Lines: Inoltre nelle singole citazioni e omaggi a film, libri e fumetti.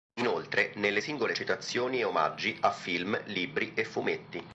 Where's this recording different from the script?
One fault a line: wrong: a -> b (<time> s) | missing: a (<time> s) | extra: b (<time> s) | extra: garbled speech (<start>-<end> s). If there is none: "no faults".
no faults